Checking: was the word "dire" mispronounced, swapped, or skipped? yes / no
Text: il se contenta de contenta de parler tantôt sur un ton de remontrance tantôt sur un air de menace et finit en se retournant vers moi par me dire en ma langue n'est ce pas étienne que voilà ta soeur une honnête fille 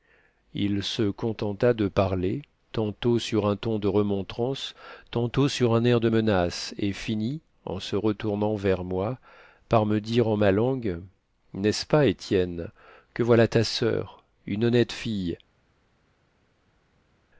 no